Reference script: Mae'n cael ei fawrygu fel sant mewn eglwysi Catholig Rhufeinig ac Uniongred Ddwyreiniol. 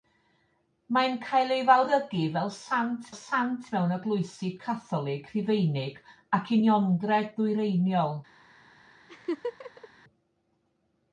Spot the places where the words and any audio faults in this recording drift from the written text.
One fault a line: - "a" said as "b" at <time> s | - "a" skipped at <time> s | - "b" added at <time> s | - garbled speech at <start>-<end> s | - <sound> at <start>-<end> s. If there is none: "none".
- "sant" added at 3.2 s
- laugh at 9.1-9.9 s